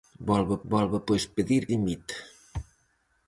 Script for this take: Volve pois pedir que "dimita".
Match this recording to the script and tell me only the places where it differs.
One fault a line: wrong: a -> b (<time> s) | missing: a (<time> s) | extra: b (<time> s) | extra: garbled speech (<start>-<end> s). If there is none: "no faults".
extra: volve (0.7 s)
missing: que (1.6 s)